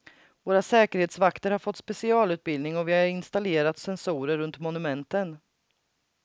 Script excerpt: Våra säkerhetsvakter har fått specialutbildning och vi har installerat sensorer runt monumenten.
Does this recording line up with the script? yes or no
yes